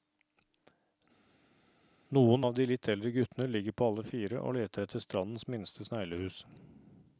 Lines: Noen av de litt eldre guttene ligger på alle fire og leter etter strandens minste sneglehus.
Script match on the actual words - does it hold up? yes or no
yes